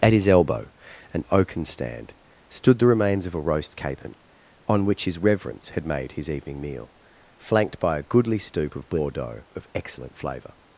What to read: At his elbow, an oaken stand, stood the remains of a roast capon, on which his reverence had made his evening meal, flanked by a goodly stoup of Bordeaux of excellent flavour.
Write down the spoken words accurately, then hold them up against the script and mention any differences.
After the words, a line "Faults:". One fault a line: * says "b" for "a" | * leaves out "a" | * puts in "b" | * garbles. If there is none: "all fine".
At his elbow, an oaken stand, stood the remains of a roast capon, on which his reverence had made his evening meal, flanked by a goodly stoup of Bordeaux of excellent flavour.
Faults:
all fine